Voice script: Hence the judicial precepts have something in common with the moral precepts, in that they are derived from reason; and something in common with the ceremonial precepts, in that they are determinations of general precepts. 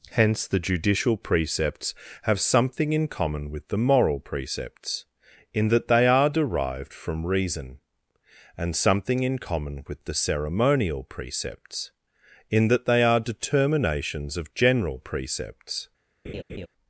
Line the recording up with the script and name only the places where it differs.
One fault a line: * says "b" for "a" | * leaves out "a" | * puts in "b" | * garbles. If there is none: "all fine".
all fine